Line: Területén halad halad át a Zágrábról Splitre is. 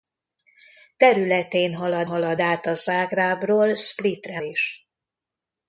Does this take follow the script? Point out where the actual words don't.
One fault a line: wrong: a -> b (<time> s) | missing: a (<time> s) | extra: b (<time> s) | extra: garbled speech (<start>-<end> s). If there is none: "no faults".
no faults